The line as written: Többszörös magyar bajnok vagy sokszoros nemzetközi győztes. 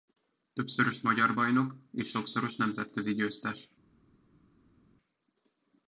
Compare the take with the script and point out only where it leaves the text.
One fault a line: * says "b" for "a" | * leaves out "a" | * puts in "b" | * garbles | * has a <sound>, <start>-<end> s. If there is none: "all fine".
* says "és" for "vagy"